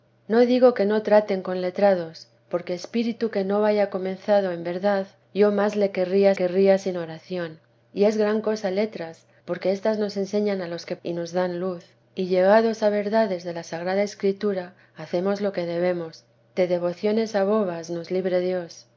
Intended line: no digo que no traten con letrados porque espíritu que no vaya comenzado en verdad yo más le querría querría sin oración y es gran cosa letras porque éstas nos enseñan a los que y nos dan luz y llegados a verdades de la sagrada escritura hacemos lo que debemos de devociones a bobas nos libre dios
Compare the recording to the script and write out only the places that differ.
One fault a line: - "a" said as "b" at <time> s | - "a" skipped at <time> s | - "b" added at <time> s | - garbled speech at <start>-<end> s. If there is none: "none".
none